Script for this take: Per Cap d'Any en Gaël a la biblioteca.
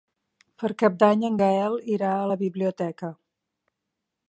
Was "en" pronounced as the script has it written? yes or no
yes